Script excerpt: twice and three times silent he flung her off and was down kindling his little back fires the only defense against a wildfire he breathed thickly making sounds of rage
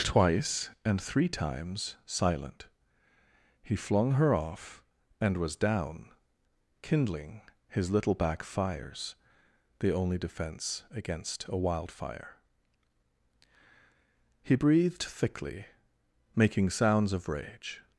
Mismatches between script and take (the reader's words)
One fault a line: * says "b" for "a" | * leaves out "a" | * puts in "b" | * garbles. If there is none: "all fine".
all fine